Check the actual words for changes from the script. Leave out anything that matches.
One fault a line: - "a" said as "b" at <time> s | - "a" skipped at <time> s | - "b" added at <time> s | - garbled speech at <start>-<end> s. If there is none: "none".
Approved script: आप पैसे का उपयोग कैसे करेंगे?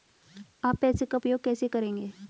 none